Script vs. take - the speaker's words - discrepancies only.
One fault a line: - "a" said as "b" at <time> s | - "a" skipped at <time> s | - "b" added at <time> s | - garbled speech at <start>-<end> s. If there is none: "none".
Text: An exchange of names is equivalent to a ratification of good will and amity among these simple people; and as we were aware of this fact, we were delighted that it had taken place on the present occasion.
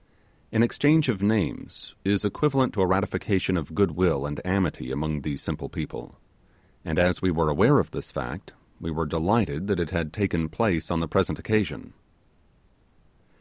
none